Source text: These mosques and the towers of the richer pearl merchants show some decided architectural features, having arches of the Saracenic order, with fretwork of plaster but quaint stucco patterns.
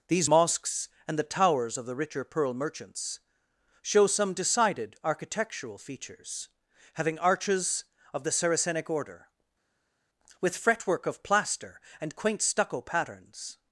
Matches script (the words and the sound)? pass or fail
fail